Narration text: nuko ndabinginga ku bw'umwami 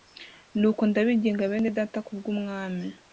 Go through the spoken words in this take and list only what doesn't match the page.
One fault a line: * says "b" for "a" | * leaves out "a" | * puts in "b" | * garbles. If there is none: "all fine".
* puts in "bene data"